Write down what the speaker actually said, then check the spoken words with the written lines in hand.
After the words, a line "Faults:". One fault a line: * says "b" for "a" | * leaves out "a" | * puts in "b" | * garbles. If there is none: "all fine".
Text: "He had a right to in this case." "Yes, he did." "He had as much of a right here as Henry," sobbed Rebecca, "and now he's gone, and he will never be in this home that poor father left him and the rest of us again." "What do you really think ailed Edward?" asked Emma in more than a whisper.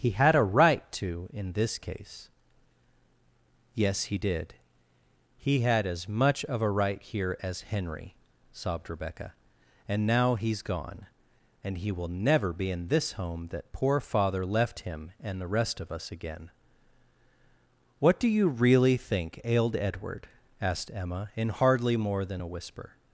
"He had a right to in this case." "Yes, he did." "He had as much of a right here as Henry," sobbed Rebecca, "and now he's gone, and he will never be in this home that poor father left him and the rest of us again." "What do you really think ailed Edward?" asked Emma in hardly more than a whisper.
Faults:
* puts in "hardly"